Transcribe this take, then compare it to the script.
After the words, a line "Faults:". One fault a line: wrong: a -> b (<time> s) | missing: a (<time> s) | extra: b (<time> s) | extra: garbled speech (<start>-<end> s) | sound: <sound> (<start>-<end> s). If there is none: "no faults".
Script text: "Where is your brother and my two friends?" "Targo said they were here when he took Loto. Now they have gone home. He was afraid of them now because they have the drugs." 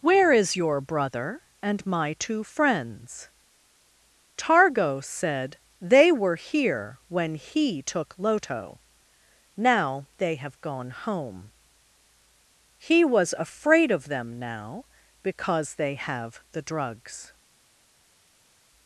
"Where is your brother and my two friends?" "Targo said they were here when he took Loto. Now they have gone home. He was afraid of them now because they have the drugs."
Faults:
no faults